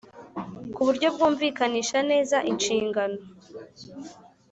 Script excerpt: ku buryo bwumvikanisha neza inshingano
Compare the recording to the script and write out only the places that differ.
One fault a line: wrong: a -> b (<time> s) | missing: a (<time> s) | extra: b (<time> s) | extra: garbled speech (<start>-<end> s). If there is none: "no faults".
no faults